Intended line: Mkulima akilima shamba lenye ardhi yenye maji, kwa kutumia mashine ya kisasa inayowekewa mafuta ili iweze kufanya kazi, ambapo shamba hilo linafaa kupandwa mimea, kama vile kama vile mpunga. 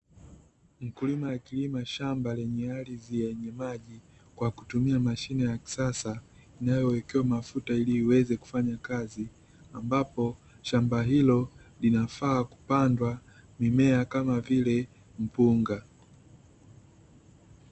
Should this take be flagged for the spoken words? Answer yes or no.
yes